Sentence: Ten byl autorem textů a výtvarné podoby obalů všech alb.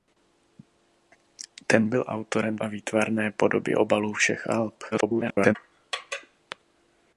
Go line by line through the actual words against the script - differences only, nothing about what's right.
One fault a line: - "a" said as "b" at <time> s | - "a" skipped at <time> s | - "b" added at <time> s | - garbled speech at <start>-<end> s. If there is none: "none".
- "textů" skipped at 2.6 s
- garbled speech at 4.9-5.5 s